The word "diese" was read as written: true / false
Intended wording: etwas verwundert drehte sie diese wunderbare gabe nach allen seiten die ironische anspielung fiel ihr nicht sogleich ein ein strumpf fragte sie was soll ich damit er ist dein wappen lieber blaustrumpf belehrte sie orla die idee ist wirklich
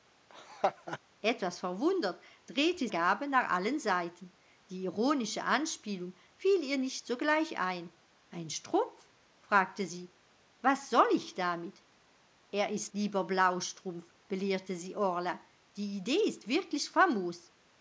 false